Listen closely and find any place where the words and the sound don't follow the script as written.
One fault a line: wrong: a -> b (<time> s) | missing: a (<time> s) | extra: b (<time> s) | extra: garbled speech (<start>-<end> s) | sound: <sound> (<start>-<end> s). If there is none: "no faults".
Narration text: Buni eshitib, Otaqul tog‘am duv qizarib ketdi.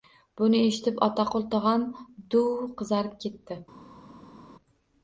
no faults